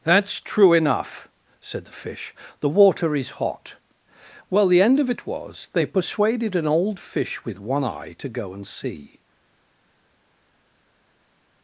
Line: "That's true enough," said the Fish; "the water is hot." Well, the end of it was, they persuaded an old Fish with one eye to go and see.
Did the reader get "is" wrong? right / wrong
right